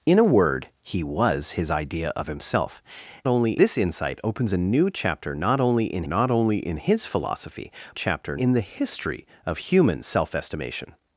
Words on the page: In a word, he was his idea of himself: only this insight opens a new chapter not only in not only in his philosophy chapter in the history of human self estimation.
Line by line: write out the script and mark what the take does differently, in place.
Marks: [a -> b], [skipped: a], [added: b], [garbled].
In a word, he was his idea of himself: only this insight opens a new chapter not only in not only in his philosophy chapter in the history of human self estimation.